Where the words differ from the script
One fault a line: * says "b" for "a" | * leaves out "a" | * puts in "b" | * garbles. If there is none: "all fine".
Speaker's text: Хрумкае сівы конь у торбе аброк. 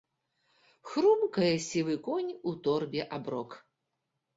all fine